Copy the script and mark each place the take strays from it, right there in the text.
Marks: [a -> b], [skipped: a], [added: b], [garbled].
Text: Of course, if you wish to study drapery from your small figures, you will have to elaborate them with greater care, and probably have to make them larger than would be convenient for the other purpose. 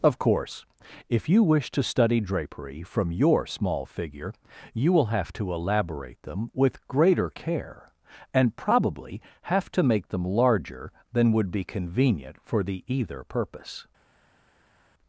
Of course, if you wish to study drapery from your small [figures, -> figure] you will have to elaborate them with greater care, and probably have to make them larger than would be convenient for the [other -> either] purpose.